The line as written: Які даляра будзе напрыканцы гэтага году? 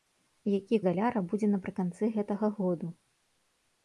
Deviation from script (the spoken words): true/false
false